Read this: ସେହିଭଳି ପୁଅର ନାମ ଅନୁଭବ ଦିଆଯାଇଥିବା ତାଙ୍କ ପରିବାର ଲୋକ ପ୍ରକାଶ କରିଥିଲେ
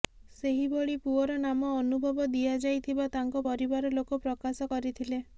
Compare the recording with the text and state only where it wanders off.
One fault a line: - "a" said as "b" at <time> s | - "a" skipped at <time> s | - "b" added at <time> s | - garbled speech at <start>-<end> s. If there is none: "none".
none